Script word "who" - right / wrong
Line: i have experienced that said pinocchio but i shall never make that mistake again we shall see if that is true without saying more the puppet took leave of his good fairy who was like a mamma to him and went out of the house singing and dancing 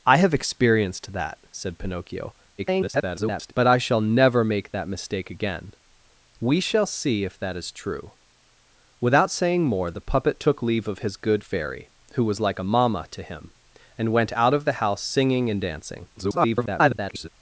right